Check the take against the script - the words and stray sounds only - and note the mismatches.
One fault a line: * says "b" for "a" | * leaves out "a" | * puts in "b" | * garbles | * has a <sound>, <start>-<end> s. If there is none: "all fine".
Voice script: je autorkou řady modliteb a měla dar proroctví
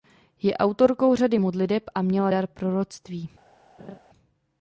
* has a laugh, 3.8-4.0 s